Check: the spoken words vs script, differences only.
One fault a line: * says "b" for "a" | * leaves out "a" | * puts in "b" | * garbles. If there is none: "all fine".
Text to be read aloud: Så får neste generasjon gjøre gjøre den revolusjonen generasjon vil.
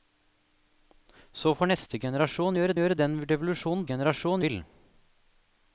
all fine